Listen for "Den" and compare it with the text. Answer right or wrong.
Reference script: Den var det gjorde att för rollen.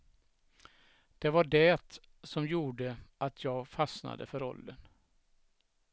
wrong